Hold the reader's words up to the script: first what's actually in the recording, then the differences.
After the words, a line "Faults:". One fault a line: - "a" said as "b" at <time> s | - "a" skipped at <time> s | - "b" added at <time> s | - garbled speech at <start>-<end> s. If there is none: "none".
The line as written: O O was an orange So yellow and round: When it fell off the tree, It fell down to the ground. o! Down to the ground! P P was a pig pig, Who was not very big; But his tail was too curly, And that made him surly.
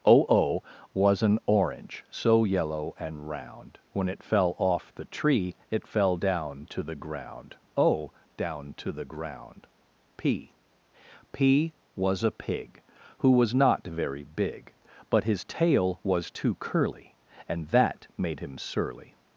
O O was an orange So yellow and round: When it fell off the tree, It fell down to the ground. o! Down to the ground! P P was a pig, Who was not very big; But his tail was too curly, And that made him surly.
Faults:
- "pig" skipped at 12.8 s